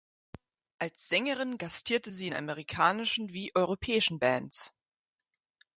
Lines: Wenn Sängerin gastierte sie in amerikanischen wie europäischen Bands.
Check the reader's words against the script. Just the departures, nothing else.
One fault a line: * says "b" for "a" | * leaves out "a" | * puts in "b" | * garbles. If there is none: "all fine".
* says "Als" for "Wenn"